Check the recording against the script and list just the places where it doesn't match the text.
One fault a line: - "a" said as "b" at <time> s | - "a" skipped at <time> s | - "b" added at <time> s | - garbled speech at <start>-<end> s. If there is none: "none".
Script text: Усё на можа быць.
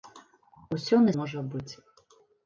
none